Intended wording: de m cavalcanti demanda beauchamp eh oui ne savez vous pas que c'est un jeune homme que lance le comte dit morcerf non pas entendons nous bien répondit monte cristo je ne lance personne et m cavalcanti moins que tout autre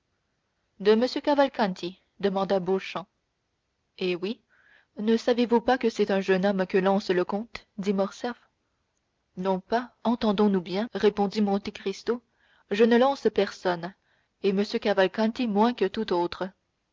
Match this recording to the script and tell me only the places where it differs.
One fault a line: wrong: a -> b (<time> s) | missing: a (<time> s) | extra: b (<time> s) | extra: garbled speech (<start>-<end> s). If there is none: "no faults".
no faults